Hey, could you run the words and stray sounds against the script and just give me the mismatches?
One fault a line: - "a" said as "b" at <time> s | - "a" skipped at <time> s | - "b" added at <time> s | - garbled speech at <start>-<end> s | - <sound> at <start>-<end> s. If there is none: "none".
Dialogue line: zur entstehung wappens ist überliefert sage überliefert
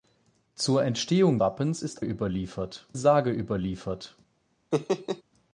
- laugh at 4.7-5.2 s